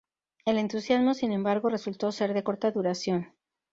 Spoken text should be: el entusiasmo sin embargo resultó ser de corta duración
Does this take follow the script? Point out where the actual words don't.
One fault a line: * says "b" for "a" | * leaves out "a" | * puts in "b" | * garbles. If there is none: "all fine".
all fine